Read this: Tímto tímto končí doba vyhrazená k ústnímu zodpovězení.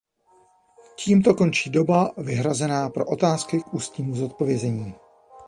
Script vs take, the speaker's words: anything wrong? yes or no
yes